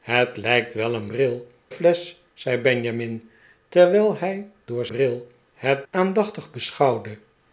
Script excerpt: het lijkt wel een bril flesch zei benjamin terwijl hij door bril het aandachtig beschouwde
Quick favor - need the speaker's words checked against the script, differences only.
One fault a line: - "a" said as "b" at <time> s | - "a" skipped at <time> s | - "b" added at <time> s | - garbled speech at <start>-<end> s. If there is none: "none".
none